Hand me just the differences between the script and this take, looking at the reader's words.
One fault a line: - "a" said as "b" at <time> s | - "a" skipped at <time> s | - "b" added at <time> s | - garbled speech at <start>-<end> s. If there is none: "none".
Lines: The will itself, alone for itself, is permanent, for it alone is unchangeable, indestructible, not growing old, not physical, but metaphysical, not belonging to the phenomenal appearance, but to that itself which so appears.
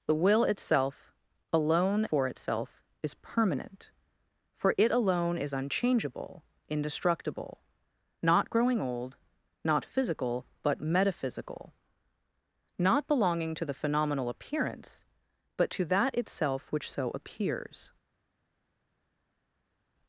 none